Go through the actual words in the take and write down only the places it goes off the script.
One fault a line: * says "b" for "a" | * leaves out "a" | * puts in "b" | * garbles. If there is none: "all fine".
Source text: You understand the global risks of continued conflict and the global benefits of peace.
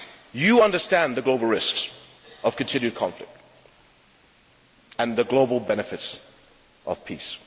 all fine